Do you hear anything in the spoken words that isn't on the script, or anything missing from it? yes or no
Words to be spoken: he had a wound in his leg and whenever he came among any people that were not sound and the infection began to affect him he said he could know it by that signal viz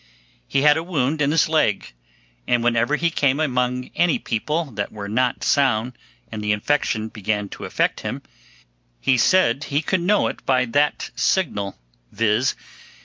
no